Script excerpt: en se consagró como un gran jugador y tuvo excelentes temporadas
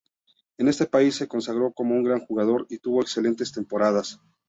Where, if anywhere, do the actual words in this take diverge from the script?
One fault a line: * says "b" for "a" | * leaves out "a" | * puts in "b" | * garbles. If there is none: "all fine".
* puts in "este país"